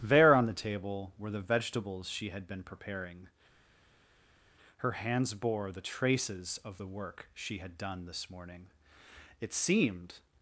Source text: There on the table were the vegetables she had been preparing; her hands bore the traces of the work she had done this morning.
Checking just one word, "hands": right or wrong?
right